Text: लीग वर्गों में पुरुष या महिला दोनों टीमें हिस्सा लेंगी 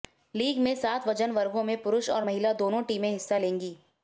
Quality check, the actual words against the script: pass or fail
fail